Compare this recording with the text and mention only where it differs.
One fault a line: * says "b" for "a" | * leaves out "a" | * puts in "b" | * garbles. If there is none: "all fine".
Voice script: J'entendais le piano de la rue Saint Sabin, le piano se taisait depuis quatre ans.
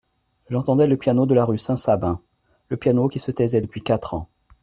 * puts in "qui"